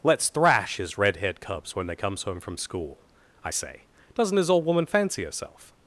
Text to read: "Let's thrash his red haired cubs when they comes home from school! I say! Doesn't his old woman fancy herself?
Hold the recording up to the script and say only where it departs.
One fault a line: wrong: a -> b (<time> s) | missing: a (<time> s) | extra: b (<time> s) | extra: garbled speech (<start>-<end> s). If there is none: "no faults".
no faults